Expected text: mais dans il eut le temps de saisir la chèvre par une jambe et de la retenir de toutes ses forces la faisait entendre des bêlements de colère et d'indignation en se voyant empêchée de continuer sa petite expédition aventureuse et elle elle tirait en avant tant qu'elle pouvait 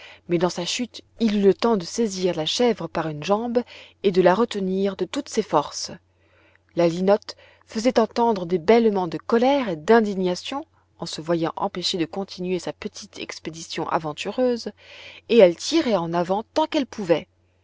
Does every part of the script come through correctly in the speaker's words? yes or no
no